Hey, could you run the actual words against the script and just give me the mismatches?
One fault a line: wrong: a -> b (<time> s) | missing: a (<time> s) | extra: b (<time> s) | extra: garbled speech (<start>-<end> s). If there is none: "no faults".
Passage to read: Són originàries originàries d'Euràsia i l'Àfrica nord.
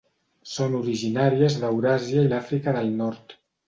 missing: originàries (1.6 s)
extra: del (2.8 s)